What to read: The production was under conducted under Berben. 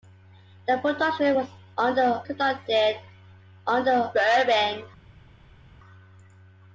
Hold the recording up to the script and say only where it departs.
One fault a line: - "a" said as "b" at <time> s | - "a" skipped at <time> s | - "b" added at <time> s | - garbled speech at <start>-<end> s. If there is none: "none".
none